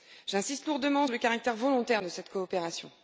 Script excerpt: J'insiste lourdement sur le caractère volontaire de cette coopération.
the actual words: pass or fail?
fail